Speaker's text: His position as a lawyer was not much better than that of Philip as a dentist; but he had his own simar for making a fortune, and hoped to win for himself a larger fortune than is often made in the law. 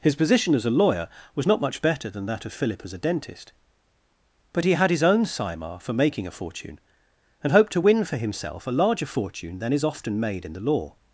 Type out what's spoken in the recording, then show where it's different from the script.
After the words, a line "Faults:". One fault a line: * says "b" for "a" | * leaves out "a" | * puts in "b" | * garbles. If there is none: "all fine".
His position as a lawyer was not much better than that of Philip as a dentist; but he had his own simar for making a fortune, and hoped to win for himself a larger fortune than is often made in the law.
Faults:
all fine